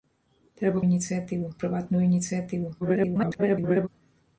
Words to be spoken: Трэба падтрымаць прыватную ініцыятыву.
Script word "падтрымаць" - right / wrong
wrong